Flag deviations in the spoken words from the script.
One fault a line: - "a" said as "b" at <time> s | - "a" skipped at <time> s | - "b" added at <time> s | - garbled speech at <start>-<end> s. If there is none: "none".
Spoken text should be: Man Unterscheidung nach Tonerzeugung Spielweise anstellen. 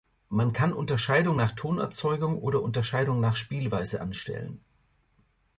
- "kann" added at 0.5 s
- "oder Unterscheidung nach" added at 2.4 s